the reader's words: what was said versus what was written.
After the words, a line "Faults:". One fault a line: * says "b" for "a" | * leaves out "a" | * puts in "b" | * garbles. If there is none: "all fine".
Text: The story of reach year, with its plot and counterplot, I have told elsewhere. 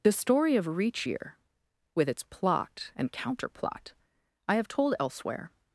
The story of reach year, with its plot and counterplot, I have told elsewhere.
Faults:
all fine